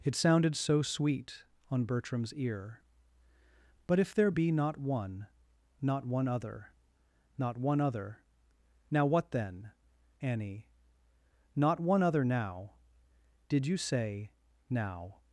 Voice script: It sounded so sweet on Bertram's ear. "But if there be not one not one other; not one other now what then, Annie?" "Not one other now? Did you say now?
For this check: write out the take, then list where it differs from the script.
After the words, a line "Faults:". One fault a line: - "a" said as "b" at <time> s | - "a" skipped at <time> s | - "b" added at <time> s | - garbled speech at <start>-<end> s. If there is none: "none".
It sounded so sweet on Bertram's ear. "But if there be not one not one other; not one other now what then, Annie?" "Not one other now? Did you say now?
Faults:
none